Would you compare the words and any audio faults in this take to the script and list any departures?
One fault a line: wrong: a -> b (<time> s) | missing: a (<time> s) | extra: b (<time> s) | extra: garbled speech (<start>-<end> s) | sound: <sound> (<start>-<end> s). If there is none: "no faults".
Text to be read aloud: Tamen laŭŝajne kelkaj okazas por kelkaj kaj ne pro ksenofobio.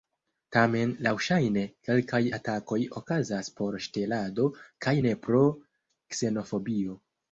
extra: atakoj (2.4 s)
wrong: kelkaj -> ŝtelado (3.9 s)